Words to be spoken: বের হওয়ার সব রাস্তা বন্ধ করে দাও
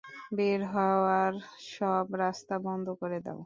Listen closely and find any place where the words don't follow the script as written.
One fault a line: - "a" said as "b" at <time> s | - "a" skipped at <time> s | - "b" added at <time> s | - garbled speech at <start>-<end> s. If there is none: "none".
none